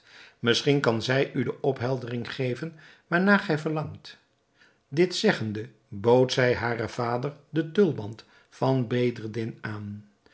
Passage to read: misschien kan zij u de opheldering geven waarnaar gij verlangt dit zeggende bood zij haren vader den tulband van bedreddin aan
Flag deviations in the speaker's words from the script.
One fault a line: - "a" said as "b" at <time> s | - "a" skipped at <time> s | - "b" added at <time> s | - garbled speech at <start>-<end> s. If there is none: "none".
none